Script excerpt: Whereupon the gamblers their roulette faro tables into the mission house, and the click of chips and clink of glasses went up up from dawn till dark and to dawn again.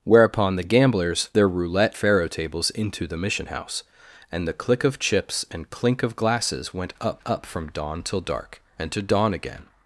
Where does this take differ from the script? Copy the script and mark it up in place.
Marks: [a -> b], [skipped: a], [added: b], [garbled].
Whereupon the gamblers their roulette faro tables into the mission house, and the click of chips and clink of glasses went up up from dawn till dark and to dawn again.